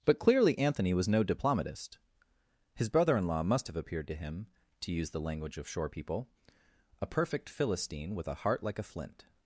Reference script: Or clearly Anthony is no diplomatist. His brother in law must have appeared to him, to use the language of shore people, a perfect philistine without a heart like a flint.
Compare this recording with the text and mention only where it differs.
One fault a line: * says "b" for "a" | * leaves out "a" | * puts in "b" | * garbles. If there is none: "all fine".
* says "But" for "Or"
* says "was" for "is"
* says "with" for "without"